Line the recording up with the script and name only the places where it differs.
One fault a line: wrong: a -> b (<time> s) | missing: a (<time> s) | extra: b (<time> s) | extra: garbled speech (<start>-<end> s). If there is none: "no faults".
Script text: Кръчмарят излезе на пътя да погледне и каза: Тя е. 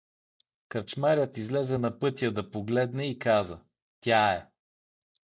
no faults